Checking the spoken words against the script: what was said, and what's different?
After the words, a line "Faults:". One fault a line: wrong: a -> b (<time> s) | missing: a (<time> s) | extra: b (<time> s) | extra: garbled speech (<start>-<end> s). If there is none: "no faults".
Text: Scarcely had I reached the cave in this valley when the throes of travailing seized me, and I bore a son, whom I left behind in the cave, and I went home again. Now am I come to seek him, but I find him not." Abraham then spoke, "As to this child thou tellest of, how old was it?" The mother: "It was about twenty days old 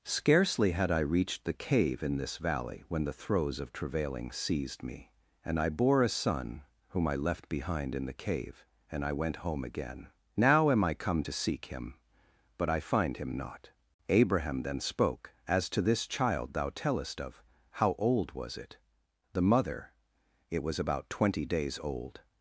Scarcely had I reached the cave in this valley when the throes of travailing seized me, and I bore a son, whom I left behind in the cave, and I went home again. Now am I come to seek him, but I find him not." Abraham then spoke, "As to this child thou tellest of, how old was it?" The mother: "It was about twenty days old
Faults:
no faults